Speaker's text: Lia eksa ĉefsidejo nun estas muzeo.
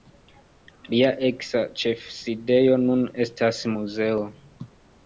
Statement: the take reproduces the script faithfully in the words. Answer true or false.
true